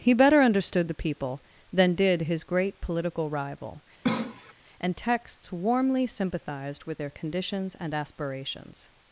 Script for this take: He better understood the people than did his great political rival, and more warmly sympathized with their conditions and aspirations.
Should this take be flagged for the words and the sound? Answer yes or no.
yes